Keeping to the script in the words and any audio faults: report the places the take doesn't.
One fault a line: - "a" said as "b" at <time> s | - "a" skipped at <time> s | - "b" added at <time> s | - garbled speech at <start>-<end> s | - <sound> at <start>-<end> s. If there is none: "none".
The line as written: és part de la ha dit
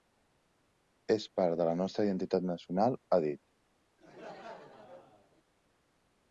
- "nostra identitat nacional" added at 1.8 s
- laugh at 4.0-5.4 s